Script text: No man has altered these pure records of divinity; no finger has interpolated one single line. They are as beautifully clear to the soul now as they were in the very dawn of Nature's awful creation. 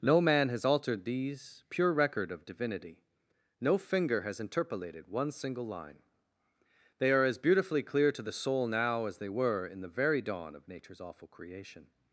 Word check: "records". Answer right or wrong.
wrong